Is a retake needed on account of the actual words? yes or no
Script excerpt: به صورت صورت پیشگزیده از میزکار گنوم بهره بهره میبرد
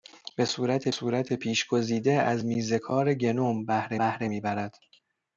no